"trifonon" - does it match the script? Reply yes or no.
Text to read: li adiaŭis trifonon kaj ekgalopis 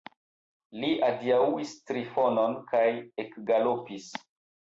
yes